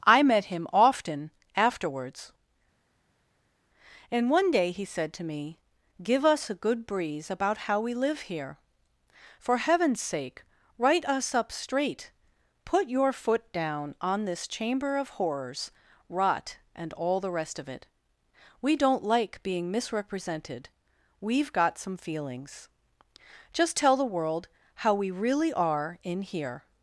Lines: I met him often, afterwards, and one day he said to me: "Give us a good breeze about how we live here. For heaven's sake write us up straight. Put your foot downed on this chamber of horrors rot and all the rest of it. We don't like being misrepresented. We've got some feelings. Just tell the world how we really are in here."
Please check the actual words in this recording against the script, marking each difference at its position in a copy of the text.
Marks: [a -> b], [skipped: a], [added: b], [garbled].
I met him often, afterwards, and one day he said to me: "Give us a good breeze about how we live here. For heaven's sake write us up straight. Put your foot [downed -> down] on this chamber of horrors rot and all the rest of it. We don't like being misrepresented. We've got some feelings. Just tell the world how we really are in here."